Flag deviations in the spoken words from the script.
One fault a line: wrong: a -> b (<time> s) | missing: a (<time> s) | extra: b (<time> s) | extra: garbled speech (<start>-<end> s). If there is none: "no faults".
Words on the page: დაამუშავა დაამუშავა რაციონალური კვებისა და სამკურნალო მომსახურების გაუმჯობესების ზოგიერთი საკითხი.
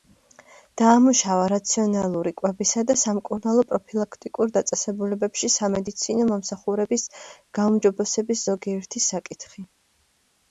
missing: დაამუშავა (1.4 s)
extra: პროფილაქტიკურ დაწესებულებებში სამედიცინო (3.7 s)